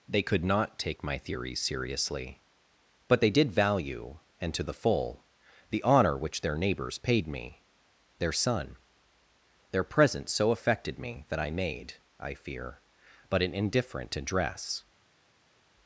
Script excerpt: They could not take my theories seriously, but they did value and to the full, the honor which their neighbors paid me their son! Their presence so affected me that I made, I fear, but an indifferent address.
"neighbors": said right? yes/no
yes